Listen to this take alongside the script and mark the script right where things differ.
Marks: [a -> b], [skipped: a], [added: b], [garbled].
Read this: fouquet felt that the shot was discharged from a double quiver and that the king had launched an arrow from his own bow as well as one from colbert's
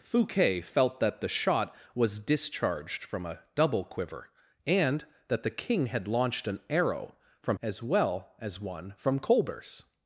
fouquet felt that the shot was discharged from a double quiver and that the king had launched an arrow from [skipped: his own bow] as well as one from colbert's